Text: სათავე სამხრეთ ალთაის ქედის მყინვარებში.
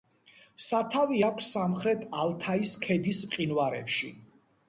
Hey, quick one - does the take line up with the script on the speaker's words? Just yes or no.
no